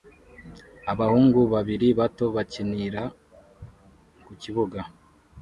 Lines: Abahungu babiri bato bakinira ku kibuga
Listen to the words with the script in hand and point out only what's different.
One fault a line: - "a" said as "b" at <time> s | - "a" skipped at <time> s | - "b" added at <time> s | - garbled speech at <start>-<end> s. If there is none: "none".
none